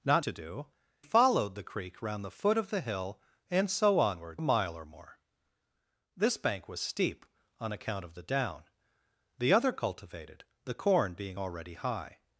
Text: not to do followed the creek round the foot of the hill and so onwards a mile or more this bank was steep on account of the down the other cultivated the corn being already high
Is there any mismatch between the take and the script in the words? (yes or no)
no